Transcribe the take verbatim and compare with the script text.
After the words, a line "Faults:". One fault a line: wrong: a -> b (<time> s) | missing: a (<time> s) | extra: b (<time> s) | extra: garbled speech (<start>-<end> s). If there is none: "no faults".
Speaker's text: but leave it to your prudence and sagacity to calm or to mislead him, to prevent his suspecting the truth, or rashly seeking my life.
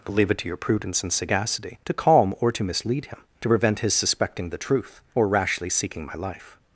but leave it to your prudence and sagacity to calm or to mislead him, to prevent his suspecting the truth, or rashly seeking my life.
Faults:
no faults